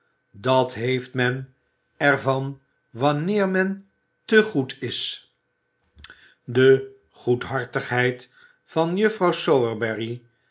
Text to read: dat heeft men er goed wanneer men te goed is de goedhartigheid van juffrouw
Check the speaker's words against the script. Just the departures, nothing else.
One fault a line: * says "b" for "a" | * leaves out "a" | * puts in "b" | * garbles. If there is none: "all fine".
* says "van" for "goed"